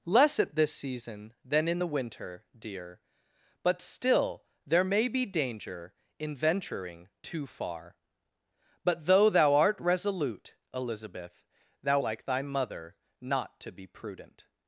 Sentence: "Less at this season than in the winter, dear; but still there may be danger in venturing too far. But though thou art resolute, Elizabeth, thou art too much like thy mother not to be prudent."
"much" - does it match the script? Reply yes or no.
no